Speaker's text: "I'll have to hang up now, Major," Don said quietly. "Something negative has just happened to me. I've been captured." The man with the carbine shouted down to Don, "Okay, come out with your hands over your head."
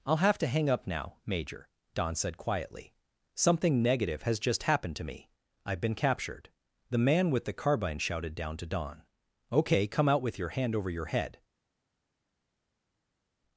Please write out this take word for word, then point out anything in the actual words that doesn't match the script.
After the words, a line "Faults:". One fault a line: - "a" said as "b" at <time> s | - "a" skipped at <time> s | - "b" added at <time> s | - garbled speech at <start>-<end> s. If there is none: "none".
"I'll have to hang up now, Major," Don said quietly. "Something negative has just happened to me. I've been captured." The man with the carbine shouted down to Don, "Okay, come out with your hand over your head."
Faults:
- "hands" said as "hand" at 10.5 s